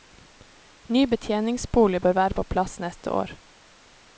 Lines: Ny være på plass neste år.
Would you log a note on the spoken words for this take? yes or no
yes